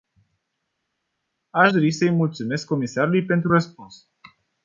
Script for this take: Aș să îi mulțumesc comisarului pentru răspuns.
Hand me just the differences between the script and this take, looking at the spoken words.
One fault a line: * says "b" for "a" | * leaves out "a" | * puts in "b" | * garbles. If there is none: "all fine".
* puts in "dori"